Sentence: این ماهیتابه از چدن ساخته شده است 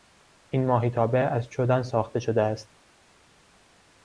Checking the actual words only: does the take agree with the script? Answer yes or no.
yes